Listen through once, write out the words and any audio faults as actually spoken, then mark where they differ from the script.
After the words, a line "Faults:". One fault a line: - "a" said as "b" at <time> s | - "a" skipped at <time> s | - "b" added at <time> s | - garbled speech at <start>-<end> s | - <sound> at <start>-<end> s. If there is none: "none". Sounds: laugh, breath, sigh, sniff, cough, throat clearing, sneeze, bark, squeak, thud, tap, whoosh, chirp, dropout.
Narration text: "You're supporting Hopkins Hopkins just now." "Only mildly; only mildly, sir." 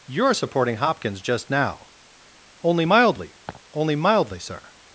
"You're supporting Hopkins just now." "Only mildly; only mildly, sir."
Faults:
- "Hopkins" skipped at 1.2 s
- laugh at 3.5-3.6 s